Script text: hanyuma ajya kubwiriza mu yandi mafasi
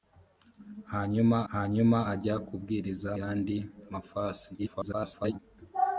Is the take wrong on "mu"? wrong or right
wrong